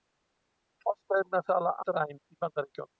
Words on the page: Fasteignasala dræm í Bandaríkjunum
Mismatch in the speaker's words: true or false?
false